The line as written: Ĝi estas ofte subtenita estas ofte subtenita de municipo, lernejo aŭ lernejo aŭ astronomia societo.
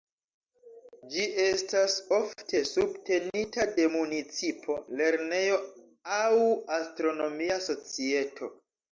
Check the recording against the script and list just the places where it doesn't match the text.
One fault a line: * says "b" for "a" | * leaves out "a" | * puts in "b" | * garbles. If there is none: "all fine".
* leaves out "estas ofte subtenita"
* leaves out "lernejo aŭ"